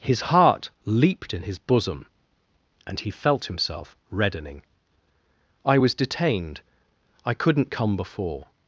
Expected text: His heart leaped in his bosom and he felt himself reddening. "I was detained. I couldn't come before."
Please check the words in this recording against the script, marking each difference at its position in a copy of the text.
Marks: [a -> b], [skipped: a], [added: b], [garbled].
His heart leaped in his bosom and he felt himself reddening. "I was detained. I couldn't come before."